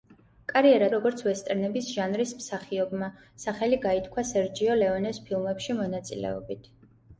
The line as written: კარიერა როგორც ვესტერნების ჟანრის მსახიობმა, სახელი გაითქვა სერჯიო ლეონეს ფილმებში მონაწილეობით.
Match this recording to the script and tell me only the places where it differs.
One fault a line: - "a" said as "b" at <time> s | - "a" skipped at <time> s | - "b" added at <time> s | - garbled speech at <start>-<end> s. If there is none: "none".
none